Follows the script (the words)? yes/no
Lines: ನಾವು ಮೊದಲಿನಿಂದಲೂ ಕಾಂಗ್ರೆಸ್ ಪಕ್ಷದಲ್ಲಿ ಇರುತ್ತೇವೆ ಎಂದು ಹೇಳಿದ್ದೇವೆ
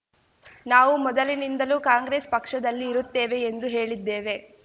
yes